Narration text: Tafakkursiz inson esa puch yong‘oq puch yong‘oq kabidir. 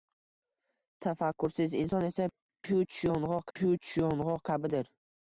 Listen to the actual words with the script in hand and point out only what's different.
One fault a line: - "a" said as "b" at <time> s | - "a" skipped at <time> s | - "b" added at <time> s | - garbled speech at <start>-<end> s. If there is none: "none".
none